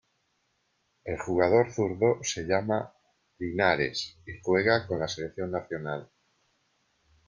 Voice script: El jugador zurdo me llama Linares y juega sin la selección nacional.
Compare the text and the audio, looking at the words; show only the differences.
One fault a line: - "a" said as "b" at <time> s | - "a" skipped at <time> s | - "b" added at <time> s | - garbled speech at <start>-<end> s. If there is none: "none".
- "me" said as "se" at 2.2 s
- "sin" said as "con" at 4.9 s